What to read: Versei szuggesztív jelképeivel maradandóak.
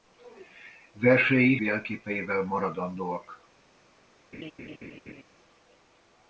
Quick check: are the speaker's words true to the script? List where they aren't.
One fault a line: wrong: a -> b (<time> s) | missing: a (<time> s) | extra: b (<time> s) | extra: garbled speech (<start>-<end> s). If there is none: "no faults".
missing: szuggesztív (1.6 s)